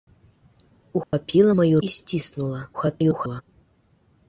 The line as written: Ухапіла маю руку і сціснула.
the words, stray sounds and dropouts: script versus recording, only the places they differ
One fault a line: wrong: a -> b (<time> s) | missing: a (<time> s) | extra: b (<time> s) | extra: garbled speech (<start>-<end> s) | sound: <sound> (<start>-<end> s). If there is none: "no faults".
sound: dropout (1.0-1.1 s)
missing: руку (1.8 s)
extra: garbled speech (2.7-3.4 s)